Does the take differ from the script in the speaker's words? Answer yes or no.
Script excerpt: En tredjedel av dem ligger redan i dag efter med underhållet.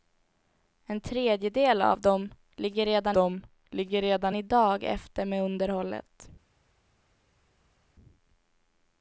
yes